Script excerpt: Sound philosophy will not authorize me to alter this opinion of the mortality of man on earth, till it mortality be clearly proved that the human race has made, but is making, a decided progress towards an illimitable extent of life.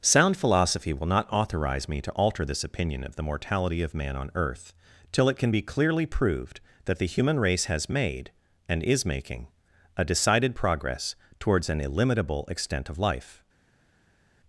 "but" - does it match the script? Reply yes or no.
no